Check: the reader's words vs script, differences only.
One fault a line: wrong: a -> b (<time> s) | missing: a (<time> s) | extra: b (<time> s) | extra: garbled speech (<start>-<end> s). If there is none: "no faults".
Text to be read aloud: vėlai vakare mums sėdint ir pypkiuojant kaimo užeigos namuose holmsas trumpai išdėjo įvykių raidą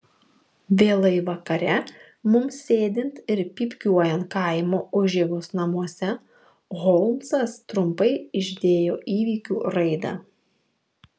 no faults